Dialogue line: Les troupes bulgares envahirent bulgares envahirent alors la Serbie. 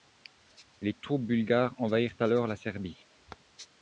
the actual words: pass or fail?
fail